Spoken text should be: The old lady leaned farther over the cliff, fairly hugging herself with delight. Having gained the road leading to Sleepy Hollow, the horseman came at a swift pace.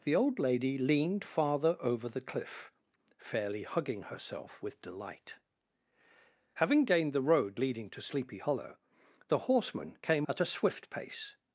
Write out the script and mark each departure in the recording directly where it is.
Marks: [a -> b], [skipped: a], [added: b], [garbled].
The old lady leaned farther over the cliff, fairly hugging herself with delight. Having gained the road leading to Sleepy Hollow, the horseman came at a swift pace.